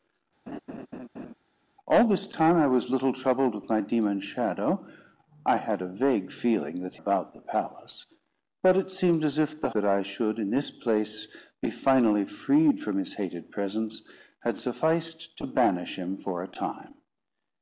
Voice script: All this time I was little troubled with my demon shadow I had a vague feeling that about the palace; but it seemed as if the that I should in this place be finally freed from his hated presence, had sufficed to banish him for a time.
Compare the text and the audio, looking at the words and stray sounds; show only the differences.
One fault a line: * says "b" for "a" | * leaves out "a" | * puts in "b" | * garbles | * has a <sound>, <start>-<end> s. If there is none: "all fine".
* has a laugh, 0.5-1.3 s